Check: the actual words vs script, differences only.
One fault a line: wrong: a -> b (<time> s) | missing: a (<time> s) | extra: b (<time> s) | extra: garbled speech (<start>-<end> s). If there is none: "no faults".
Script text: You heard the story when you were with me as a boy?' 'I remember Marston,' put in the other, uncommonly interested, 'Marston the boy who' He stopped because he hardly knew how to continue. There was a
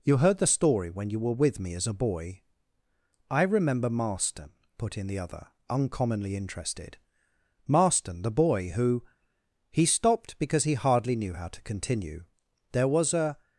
no faults